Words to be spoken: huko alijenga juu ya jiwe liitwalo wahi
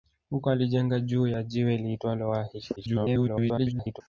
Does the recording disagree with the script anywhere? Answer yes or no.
yes